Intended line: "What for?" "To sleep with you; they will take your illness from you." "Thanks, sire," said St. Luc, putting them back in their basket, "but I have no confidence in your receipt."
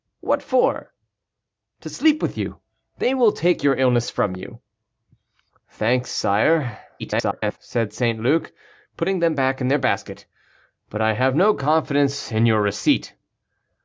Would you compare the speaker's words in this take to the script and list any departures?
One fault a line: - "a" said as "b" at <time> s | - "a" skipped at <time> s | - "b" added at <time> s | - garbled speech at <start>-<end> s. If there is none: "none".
- garbled speech at 7.0-7.6 s